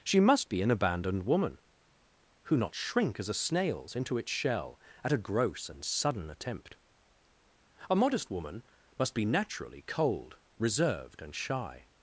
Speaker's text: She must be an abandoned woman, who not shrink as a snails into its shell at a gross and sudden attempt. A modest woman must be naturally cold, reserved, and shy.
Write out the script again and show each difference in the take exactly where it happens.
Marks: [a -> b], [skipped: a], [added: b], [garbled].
She must be an abandoned woman, who not shrink as a snails into its shell at a gross and sudden attempt. A modest woman must be naturally cold, reserved, and shy.